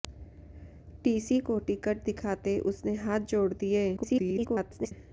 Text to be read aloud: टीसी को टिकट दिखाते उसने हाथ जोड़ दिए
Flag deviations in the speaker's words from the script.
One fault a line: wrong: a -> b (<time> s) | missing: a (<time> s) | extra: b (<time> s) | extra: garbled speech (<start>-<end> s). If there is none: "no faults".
extra: garbled speech (4.0-4.9 s)